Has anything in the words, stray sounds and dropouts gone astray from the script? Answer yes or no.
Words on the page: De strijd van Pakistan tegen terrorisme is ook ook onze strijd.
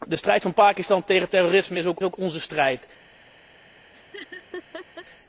yes